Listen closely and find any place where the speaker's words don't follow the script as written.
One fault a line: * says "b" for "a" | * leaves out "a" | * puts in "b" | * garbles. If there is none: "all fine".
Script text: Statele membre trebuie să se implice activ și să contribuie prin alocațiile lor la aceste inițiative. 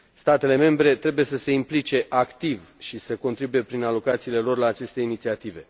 all fine